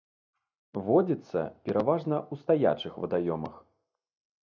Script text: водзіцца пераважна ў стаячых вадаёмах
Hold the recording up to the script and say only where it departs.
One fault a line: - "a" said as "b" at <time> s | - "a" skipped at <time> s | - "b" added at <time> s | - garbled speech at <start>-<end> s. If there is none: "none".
none